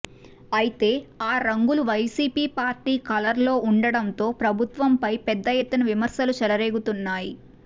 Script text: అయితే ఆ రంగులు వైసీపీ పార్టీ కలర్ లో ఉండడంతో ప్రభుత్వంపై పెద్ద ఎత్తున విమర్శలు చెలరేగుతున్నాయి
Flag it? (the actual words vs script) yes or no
no